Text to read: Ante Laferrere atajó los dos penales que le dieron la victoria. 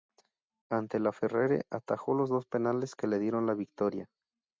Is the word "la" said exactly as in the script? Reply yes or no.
yes